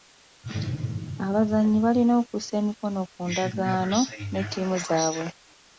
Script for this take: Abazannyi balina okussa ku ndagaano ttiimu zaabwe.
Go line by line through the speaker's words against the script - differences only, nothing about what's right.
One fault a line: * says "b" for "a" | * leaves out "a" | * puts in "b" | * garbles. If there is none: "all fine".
* puts in "emikono"
* puts in "ne"